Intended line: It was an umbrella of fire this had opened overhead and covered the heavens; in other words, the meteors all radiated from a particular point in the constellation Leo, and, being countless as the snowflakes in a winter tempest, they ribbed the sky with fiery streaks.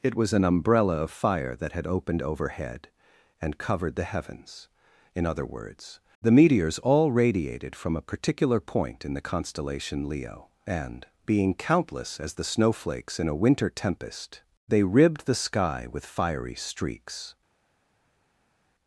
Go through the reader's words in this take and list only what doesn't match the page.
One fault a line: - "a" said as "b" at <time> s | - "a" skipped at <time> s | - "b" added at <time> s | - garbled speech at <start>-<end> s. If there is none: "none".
- "this" said as "that" at 1.6 s